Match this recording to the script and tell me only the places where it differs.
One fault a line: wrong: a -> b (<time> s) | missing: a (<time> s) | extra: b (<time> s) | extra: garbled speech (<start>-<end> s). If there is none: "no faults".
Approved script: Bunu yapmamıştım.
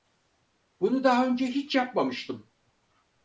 extra: daha önce hiç (1.0 s)